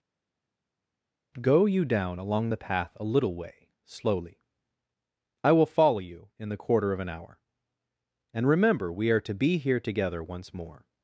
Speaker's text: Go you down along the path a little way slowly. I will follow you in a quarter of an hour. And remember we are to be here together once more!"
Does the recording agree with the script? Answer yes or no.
no